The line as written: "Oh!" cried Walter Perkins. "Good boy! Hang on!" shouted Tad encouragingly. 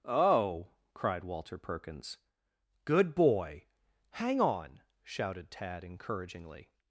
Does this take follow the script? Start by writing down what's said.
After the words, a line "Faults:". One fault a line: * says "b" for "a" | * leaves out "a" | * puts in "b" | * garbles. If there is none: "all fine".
"Oh!" cried Walter Perkins. "Good boy! Hang on!" shouted Tad encouragingly.
Faults:
all fine